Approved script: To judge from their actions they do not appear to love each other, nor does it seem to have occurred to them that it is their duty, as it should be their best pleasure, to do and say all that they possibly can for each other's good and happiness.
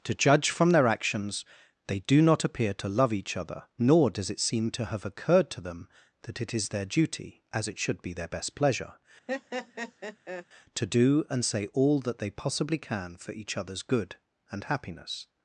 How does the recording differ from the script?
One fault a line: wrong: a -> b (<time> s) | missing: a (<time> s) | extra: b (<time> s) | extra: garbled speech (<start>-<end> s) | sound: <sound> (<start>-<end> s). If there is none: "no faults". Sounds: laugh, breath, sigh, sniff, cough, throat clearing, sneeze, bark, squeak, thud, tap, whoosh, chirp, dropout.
sound: laugh (9.3-10.5 s)